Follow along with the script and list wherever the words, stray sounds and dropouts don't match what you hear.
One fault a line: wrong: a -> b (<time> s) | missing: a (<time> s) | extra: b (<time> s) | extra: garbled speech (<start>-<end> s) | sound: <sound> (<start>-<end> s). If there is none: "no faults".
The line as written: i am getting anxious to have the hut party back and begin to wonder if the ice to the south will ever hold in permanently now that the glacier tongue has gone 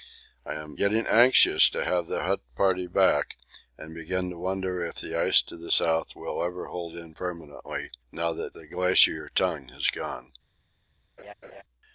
sound: laugh (11.2-11.6 s)